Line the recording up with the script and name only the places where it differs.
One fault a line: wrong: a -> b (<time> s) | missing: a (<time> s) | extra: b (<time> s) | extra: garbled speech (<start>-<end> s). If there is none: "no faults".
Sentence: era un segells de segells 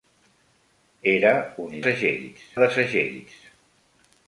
no faults